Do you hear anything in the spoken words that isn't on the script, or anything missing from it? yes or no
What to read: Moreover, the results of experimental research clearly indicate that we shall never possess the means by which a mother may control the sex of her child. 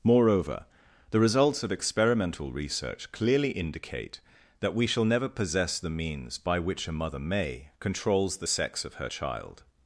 yes